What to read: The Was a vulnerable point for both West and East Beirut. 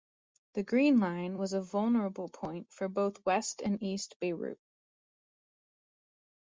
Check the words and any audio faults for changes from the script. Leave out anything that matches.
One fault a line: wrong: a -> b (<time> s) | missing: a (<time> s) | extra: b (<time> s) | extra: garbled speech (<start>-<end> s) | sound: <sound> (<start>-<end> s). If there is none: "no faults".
extra: Green Line (0.6 s)